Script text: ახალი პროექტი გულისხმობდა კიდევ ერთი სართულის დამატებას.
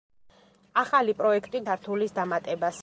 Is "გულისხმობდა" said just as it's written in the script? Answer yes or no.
no